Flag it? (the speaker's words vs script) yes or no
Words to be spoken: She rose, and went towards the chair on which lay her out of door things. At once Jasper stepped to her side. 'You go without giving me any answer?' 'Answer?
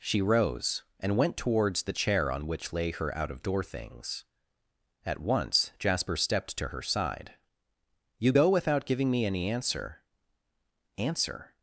no